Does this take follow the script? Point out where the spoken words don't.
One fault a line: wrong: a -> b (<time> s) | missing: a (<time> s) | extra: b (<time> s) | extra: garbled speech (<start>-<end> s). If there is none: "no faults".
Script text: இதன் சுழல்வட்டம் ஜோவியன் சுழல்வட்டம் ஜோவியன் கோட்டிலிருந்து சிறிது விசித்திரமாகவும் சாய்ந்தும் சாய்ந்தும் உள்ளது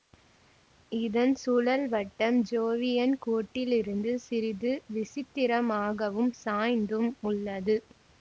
missing: சுழல்வட்டம் ஜோவியன் (3.1 s)
missing: சாய்ந்தும் (7.1 s)